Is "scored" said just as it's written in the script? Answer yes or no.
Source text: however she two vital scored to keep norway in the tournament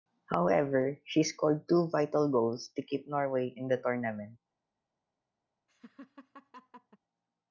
no